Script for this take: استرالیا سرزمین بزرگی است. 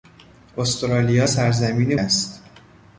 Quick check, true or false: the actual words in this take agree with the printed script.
false